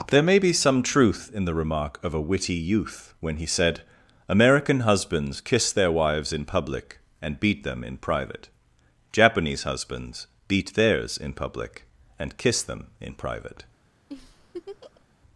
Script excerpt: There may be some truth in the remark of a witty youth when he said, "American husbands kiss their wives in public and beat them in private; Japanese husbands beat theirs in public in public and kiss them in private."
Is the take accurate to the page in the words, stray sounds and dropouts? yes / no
no